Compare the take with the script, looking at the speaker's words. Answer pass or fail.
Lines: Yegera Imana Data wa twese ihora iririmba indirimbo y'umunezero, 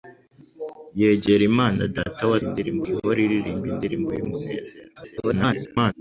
fail